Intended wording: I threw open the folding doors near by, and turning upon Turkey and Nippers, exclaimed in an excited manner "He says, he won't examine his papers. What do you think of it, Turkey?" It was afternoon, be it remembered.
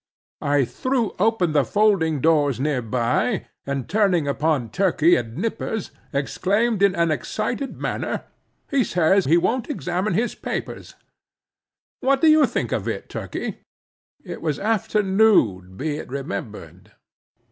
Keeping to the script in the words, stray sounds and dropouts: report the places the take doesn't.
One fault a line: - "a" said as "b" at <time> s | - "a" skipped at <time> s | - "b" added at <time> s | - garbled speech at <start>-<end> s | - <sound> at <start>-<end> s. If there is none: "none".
none